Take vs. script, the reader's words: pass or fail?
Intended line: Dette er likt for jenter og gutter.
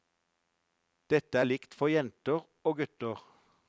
pass